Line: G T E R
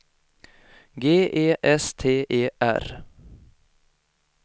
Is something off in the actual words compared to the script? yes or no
yes